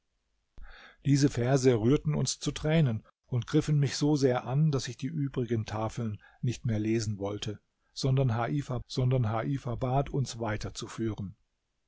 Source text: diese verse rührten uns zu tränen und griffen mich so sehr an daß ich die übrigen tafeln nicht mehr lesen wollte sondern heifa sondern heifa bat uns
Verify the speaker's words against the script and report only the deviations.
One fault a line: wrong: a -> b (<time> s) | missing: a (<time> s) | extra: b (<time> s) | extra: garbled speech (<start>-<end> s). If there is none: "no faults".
no faults